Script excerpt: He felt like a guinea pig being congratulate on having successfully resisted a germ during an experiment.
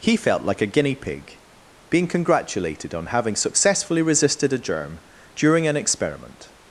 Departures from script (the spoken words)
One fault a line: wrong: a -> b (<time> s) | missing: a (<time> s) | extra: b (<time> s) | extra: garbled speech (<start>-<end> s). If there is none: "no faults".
wrong: congratulate -> congratulated (2.1 s)